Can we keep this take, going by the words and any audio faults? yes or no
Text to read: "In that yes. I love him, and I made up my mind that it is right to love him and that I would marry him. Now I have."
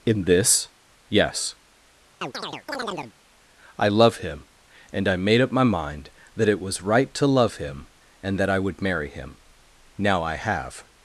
no